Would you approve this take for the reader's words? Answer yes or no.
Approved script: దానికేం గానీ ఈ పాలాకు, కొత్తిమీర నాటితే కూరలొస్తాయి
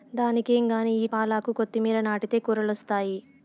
yes